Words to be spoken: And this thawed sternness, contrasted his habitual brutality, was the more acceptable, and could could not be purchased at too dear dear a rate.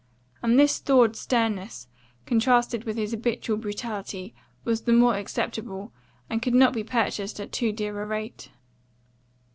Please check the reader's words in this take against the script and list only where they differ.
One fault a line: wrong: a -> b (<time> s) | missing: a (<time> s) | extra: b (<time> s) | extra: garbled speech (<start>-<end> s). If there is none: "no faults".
extra: with (2.9 s)
missing: could (6.5 s)
missing: dear (8.0 s)